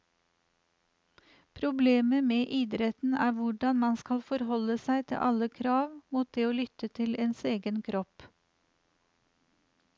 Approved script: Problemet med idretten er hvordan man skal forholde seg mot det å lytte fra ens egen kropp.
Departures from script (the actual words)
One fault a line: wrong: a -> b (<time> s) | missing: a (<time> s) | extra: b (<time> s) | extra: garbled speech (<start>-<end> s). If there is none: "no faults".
extra: til alle krav (5.1 s)
wrong: fra -> til (7.0 s)